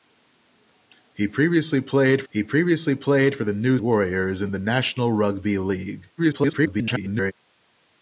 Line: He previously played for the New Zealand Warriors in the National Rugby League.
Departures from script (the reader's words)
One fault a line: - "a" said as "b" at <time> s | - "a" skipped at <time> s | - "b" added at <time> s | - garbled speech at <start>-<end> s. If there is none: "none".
- "he previously played" added at 2.3 s
- "Zealand" skipped at 3.8 s
- garbled speech at 6.2-7.3 s